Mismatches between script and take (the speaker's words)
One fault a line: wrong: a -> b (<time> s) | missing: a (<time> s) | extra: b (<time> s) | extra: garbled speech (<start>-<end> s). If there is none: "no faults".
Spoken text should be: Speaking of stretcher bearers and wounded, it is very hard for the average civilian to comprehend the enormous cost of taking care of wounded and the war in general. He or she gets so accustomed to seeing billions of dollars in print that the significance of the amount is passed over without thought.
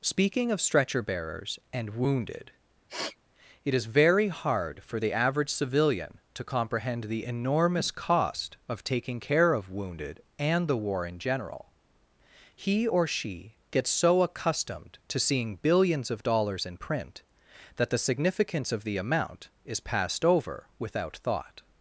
no faults